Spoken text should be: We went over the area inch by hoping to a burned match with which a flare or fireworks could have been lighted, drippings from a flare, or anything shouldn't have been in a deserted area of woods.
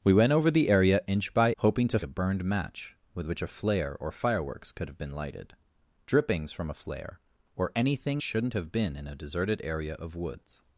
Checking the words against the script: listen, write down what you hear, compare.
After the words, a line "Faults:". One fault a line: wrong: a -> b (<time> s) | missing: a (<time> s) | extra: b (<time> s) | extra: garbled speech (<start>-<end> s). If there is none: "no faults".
We went over the area inch by hoping to a burned match with which a flare or fireworks could have been lighted, drippings from a flare, or anything shouldn't have been in a deserted area of woods.
Faults:
no faults